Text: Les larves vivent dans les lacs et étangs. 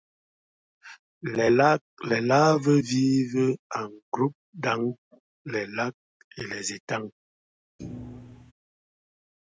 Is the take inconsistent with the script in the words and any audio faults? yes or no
yes